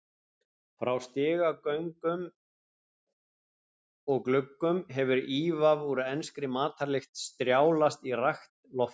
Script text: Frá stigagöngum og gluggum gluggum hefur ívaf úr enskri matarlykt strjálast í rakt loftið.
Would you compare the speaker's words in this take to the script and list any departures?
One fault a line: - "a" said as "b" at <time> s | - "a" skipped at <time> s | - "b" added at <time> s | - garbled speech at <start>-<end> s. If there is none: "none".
- "gluggum" skipped at 4.8 s